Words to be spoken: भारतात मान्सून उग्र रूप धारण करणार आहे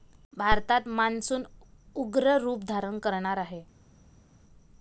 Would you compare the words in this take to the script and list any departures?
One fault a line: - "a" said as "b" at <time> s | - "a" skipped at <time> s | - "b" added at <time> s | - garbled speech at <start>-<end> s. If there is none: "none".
none